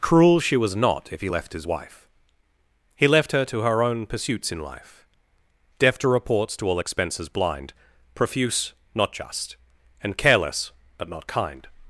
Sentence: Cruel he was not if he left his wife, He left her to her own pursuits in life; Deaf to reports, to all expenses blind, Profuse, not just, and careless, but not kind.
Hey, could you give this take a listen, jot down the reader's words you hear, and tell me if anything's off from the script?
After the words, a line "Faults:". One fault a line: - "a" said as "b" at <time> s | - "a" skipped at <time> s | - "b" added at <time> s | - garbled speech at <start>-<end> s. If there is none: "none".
Cruel she was not if he left his wife, He left her to her own pursuits in life; Deaf to reports, to all expenses blind, Profuse, not just, and careless, but not kind.
Faults:
- "he" said as "she" at 0.4 s